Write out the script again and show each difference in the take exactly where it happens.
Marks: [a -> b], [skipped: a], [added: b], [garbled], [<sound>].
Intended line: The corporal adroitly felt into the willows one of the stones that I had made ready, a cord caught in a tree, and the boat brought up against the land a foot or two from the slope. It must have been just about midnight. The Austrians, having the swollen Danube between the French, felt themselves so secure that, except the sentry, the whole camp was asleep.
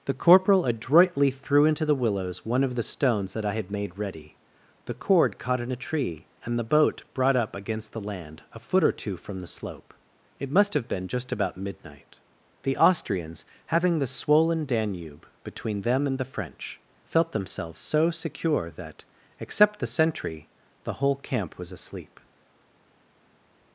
The corporal adroitly [felt -> threw] into the willows one of the stones that I had made ready, [a -> the] cord caught in a tree, and the boat brought up against the land a foot or two from the slope. It must have been just about midnight. The Austrians, having the swollen Danube between [added: them and] the French, felt themselves so secure that, except the sentry, the whole camp was asleep.